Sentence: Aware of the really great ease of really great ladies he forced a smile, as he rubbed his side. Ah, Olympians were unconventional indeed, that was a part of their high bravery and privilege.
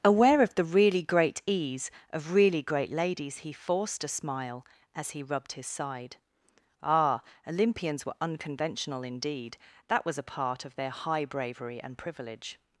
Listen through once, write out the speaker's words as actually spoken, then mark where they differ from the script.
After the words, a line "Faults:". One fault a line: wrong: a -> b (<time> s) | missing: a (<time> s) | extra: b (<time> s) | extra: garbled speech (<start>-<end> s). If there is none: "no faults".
Aware of the really great ease of really great ladies he forced a smile, as he rubbed his side. Ah, Olympians were unconventional indeed, that was a part of their high bravery and privilege.
Faults:
no faults